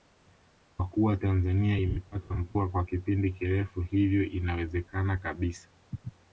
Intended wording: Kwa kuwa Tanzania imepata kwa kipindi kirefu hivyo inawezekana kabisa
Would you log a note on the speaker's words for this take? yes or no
yes